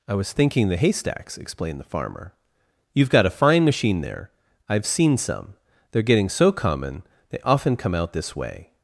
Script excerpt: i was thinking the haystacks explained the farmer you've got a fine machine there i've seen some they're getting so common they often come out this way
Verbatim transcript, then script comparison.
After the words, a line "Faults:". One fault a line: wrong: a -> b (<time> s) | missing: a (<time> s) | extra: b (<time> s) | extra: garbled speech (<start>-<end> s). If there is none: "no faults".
i was thinking the haystacks explained the farmer you've got a fine machine there i've seen some they're getting so common they often come out this way
Faults:
no faults